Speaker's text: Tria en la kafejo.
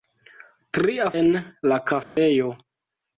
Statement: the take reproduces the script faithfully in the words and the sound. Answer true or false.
false